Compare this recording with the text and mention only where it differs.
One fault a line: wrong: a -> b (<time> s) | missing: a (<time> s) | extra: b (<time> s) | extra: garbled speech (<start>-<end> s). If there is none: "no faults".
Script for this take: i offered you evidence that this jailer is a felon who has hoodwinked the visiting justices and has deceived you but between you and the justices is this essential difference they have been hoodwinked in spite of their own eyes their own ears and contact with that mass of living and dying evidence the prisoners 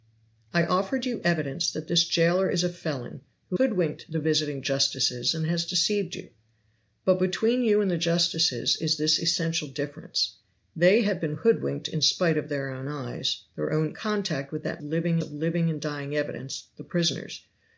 missing: has (3.6 s)
missing: ears and (13.9 s)
wrong: mass -> living (14.8 s)